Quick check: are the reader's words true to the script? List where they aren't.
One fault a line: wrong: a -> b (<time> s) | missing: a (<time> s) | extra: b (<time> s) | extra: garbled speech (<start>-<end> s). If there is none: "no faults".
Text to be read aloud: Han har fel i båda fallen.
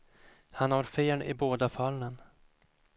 no faults